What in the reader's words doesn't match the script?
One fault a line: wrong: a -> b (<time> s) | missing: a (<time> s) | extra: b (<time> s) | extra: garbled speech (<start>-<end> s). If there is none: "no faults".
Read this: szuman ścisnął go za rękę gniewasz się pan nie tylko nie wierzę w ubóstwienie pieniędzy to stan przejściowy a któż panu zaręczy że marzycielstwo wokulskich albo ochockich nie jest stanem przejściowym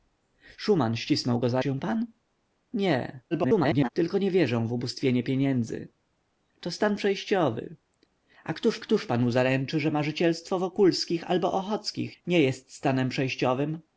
missing: rękę gniewasz (1.6 s)
extra: garbled speech (3.3-3.9 s)
extra: któż (8.8 s)